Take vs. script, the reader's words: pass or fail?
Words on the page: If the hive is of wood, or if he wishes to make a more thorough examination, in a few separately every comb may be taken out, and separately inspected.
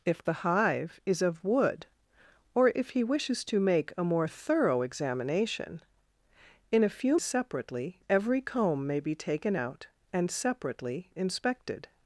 pass